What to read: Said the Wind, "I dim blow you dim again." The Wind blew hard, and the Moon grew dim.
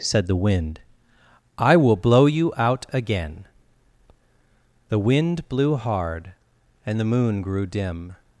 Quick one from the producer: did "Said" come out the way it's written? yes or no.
yes